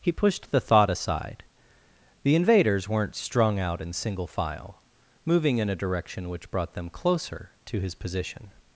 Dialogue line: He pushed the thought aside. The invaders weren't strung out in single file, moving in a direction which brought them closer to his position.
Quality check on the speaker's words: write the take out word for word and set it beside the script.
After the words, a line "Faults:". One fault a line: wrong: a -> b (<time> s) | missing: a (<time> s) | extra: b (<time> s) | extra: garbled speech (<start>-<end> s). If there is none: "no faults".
He pushed the thought aside. The invaders weren't strung out in single file, moving in a direction which brought them closer to his position.
Faults:
no faults